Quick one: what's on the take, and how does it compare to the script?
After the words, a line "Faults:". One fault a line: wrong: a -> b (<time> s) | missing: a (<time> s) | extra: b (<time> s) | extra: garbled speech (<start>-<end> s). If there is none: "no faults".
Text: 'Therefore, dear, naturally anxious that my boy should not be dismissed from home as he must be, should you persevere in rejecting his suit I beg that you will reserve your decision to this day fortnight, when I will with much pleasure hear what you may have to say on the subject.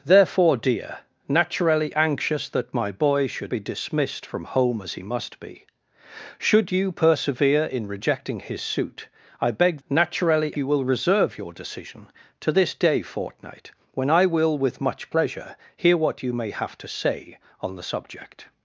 'Therefore, dear, naturally anxious that my boy should be dismissed from home as he must be, should you persevere in rejecting his suit I beg naturally you will reserve your decision to this day fortnight, when I will with much pleasure hear what you may have to say on the subject.
Faults:
missing: not (3.5 s)
wrong: that -> naturally (9.9 s)